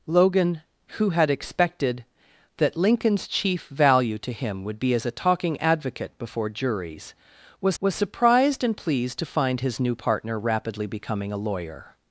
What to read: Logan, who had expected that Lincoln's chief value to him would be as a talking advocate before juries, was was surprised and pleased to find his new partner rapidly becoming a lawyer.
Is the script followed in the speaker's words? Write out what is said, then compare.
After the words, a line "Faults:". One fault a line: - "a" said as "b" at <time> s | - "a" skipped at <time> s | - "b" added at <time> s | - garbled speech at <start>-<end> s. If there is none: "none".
Logan, who had expected that Lincoln's chief value to him would be as a talking advocate before juries, was was surprised and pleased to find his new partner rapidly becoming a lawyer.
Faults:
none